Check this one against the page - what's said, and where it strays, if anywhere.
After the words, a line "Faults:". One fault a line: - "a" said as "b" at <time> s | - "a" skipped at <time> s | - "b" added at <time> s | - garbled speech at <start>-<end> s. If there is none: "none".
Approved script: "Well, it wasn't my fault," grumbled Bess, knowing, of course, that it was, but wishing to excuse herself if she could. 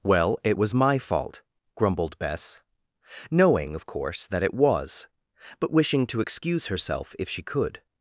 "Well, it was my fault," grumbled Bess, knowing, of course, that it was, but wishing to excuse herself if she could.
Faults:
- "wasn't" said as "was" at 0.5 s